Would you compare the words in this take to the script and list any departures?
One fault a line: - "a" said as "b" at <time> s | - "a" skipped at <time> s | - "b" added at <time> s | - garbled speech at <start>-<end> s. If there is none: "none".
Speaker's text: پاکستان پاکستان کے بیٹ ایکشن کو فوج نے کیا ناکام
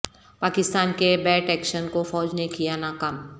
- "پاکستان" skipped at 0.9 s